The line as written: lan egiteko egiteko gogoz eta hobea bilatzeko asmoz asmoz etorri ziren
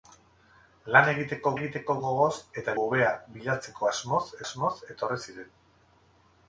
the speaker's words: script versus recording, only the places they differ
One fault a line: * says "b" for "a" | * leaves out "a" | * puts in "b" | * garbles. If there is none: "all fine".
all fine